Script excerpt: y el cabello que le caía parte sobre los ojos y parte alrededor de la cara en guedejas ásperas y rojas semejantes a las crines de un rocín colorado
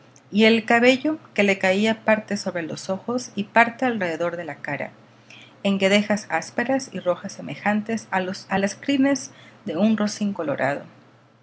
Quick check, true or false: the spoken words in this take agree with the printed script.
true